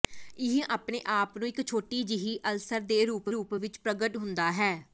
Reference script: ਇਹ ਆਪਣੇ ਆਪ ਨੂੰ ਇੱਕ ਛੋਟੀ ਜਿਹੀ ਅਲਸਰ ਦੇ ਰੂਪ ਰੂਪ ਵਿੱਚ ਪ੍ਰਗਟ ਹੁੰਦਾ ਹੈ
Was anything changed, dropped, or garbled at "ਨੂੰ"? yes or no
no